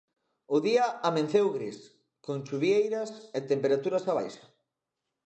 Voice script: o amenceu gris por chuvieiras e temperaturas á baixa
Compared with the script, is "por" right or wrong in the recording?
wrong